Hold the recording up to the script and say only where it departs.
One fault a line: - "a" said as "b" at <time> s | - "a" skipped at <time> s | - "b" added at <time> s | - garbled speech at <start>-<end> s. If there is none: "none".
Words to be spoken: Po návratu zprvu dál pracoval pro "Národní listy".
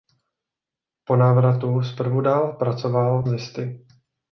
- "pro Národní" skipped at 3.2 s